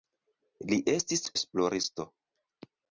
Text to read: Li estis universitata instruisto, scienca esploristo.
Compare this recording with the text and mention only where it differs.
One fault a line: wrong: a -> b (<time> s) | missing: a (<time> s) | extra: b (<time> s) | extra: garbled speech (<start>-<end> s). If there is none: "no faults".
missing: universitata instruisto scienca (1.2 s)